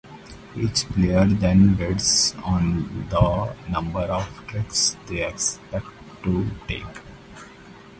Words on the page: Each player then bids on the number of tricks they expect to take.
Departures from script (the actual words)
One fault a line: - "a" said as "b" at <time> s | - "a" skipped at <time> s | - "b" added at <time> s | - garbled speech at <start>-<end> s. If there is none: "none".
none